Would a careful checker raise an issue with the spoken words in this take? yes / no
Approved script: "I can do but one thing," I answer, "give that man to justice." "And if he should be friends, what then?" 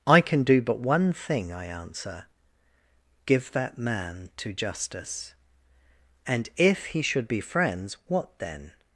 no